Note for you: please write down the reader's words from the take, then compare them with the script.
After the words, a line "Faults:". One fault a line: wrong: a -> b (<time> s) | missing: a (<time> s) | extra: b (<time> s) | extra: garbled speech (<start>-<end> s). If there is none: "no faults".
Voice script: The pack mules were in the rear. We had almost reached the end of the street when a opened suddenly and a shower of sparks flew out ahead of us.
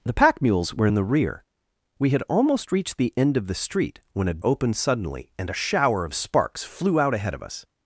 The pack mules were in the rear. We had almost reached the end of the street when a opened suddenly and a shower of sparks flew out ahead of us.
Faults:
no faults